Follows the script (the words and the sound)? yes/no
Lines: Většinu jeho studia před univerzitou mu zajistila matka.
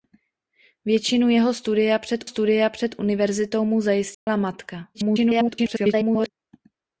no